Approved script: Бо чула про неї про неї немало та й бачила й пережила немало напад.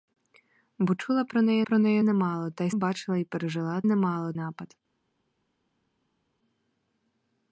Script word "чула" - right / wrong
right